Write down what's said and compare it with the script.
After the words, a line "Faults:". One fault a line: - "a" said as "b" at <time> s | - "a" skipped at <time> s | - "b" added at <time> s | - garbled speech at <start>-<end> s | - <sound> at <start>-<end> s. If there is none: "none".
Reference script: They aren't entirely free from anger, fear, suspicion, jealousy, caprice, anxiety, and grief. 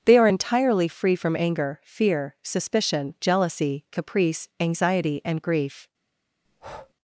They are entirely free from anger, fear, suspicion, jealousy, caprice, anxiety, and grief.
Faults:
- "aren't" said as "are" at 0.2 s
- breath at 6.4-6.9 s